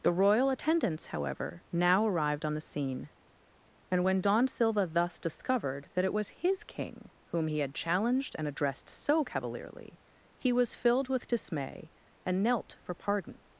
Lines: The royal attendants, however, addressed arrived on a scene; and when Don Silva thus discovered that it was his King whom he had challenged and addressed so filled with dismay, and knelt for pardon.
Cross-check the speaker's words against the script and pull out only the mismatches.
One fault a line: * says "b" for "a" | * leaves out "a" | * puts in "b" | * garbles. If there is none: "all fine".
* says "now" for "addressed"
* says "the" for "a"
* puts in "cavalierly he was"